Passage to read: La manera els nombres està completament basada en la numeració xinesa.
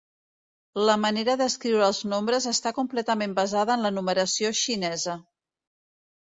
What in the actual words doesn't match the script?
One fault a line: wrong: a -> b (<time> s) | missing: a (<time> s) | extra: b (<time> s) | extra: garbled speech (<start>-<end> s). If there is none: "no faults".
extra: d'escriure (1.4 s)